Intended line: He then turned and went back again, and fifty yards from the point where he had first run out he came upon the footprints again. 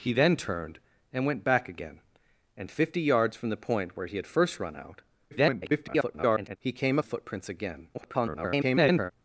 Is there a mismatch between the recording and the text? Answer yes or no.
yes